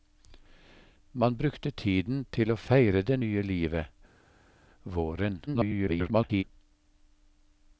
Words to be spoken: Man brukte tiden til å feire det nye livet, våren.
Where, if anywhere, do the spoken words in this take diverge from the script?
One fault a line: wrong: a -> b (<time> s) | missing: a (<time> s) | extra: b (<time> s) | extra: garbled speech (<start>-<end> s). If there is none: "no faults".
extra: garbled speech (5.5-6.4 s)